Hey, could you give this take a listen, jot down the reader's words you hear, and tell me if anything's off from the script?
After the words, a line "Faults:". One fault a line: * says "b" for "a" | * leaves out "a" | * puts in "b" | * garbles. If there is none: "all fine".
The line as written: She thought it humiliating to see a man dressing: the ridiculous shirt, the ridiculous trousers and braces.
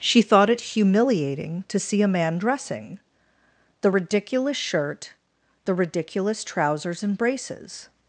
She thought it humiliating to see a man dressing: the ridiculous shirt, the ridiculous trousers and braces.
Faults:
all fine